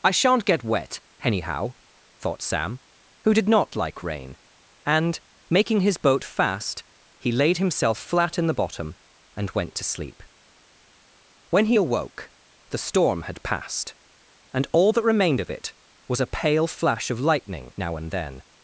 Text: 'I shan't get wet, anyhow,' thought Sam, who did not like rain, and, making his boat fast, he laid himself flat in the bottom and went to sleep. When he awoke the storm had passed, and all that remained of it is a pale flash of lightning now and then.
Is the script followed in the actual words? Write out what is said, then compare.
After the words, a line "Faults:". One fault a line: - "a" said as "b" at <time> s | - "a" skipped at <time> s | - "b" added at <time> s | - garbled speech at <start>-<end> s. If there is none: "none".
'I shan't get wet, anyhow,' thought Sam, who did not like rain, and, making his boat fast, he laid himself flat in the bottom and went to sleep. When he awoke the storm had passed, and all that remained of it was a pale flash of lightning now and then.
Faults:
- "is" said as "was" at 16.1 s